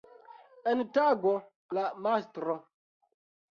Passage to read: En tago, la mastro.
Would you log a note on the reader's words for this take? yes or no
no